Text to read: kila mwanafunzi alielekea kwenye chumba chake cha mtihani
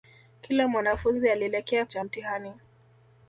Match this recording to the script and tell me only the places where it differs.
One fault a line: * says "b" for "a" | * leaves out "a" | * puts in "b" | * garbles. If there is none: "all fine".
* leaves out "kwenye chumba chake"